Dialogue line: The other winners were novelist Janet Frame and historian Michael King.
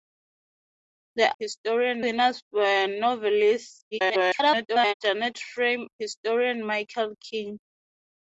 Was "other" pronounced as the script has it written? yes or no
no